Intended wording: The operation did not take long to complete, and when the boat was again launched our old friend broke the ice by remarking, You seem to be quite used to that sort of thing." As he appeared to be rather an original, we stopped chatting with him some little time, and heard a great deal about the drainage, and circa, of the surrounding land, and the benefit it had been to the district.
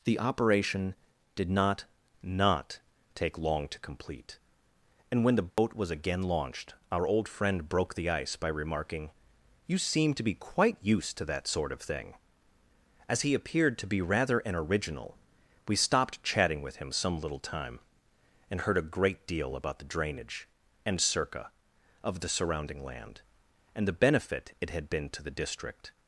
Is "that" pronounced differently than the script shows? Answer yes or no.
no